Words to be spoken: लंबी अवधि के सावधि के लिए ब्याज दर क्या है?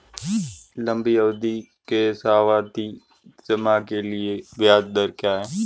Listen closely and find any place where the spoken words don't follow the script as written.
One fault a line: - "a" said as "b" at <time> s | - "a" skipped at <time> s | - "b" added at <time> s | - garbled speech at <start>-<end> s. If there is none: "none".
- "जमा" added at 3.5 s